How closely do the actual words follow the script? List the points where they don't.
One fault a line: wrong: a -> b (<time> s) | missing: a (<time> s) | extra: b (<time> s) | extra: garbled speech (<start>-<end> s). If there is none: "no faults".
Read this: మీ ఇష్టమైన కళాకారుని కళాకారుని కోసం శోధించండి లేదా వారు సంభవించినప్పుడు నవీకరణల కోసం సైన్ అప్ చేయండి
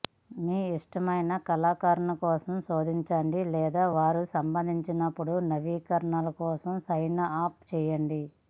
missing: కళాకారుని (2.1 s)